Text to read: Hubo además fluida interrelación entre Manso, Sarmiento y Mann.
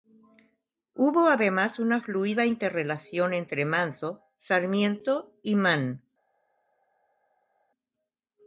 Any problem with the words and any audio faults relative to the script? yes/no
yes